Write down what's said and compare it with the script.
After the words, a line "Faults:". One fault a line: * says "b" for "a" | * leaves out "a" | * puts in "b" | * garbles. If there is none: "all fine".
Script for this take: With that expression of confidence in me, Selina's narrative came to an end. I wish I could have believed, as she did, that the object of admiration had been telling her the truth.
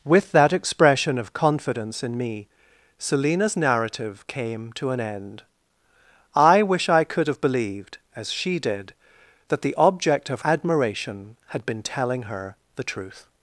With that expression of confidence in me, Selina's narrative came to an end. I wish I could have believed, as she did, that the object of admiration had been telling her the truth.
Faults:
all fine